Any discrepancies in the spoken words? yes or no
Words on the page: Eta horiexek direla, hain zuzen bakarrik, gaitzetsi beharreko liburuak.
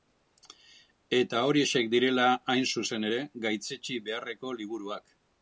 yes